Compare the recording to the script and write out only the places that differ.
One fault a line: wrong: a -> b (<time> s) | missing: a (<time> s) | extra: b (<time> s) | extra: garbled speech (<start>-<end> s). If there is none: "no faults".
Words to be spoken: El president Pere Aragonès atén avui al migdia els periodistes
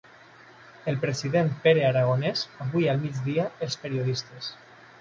missing: atén (2.5 s)